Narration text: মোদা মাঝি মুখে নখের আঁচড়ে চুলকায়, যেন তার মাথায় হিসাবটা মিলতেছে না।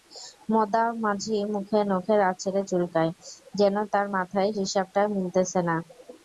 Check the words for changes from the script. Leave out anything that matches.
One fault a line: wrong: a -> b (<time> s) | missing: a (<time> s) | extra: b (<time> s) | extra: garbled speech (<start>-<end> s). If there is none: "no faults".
no faults